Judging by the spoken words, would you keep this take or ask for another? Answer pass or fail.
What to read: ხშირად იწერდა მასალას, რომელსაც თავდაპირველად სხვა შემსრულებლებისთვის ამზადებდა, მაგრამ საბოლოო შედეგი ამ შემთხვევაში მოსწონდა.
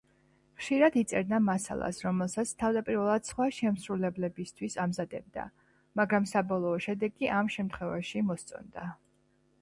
pass